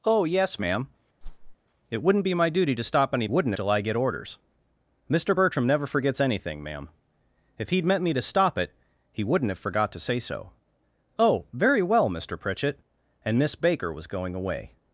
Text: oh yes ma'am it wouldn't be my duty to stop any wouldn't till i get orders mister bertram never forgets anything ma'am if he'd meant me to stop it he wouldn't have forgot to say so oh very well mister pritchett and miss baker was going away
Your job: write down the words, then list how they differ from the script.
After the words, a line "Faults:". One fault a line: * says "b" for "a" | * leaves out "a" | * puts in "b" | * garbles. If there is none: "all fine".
oh yes ma'am it wouldn't be my duty to stop any wouldn't till i get orders mister bertram never forgets anything ma'am if he'd meant me to stop it he wouldn't have forgot to say so oh very well mister pritchett and miss baker was going away
Faults:
all fine